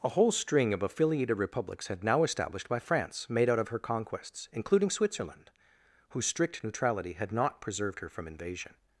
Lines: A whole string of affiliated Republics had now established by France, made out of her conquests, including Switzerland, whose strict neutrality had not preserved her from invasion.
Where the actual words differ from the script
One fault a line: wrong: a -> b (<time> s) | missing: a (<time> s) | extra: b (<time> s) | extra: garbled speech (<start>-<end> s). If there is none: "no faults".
no faults